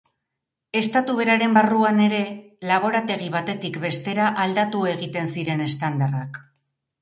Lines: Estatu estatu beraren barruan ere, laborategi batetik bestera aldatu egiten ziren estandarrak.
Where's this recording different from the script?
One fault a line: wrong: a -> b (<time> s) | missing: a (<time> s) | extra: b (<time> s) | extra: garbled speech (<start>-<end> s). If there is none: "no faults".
missing: estatu (1.2 s)